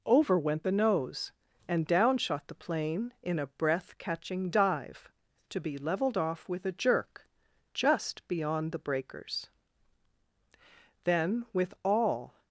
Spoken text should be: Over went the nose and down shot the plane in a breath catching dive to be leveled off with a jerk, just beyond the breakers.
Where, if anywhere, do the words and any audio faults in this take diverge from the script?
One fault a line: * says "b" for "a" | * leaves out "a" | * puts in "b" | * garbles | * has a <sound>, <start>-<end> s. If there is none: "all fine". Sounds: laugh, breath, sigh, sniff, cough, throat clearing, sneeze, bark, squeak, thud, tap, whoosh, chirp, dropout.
* puts in "Then with all"